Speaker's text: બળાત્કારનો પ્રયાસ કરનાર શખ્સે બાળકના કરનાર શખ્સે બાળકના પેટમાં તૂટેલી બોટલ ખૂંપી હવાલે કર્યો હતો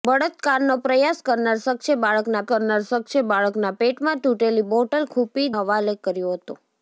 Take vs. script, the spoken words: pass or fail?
pass